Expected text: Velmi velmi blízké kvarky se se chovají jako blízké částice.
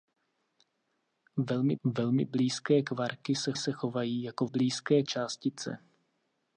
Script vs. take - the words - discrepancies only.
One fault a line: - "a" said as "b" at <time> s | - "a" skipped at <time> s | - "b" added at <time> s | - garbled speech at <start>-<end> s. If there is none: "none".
none